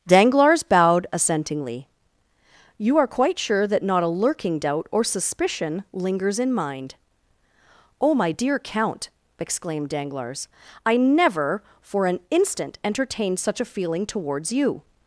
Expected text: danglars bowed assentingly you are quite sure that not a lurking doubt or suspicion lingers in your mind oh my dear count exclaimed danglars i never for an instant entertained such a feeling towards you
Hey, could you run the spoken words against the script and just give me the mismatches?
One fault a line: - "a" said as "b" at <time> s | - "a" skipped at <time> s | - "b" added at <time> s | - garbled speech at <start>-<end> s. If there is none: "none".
- "your" skipped at 6.5 s